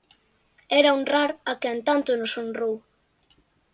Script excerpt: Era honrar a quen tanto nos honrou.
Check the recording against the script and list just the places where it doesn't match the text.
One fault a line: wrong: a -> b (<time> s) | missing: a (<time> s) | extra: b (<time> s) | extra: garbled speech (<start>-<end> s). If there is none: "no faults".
no faults